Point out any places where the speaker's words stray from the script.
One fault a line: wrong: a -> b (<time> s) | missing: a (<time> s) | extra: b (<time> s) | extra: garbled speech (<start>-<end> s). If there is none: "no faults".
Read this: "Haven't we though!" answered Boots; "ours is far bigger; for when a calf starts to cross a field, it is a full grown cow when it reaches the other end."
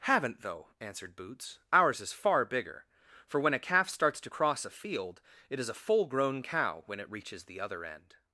missing: we (0.4 s)